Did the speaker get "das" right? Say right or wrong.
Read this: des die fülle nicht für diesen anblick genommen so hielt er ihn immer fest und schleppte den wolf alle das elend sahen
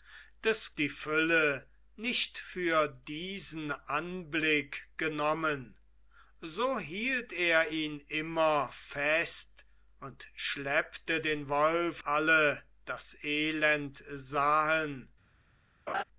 right